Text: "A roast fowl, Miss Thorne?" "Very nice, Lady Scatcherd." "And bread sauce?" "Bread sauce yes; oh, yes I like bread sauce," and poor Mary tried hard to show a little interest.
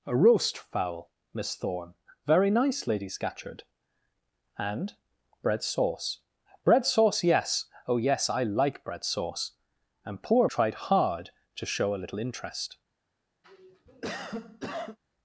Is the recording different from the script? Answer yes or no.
yes